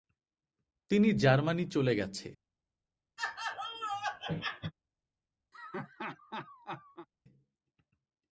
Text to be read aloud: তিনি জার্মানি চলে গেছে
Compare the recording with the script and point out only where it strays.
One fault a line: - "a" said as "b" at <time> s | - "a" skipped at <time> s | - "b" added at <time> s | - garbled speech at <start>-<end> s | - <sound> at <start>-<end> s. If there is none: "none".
- laugh at 3.2-4.7 s
- laugh at 5.5-7.1 s